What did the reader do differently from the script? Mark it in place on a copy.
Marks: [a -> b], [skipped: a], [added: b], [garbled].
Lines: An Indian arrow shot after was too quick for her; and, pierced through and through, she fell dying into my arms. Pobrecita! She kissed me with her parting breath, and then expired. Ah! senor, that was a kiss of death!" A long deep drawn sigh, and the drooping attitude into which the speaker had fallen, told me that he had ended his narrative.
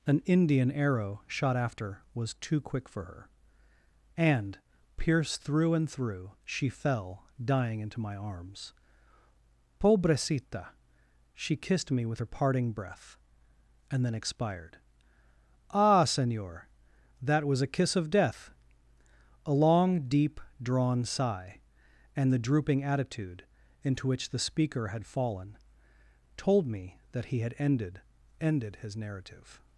An Indian arrow shot after was too quick for her; and, pierced through and through, she fell dying into my arms. Pobrecita! She kissed me with her parting breath, and then expired. Ah! senor, that was a kiss of death!" A long deep drawn sigh, and the drooping attitude into which the speaker had fallen, told me that he had ended [added: ended] his narrative.